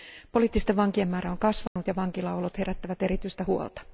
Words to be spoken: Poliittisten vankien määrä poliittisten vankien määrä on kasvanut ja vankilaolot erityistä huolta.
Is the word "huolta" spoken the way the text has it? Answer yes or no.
yes